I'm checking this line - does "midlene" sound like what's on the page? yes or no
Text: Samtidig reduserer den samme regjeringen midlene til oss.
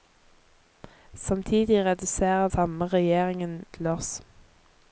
no